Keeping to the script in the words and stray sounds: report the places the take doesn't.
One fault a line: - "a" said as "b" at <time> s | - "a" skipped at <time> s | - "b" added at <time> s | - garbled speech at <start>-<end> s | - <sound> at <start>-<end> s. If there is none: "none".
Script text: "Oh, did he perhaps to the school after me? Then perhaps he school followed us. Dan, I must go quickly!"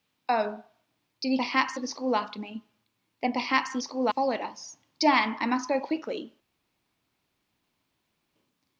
none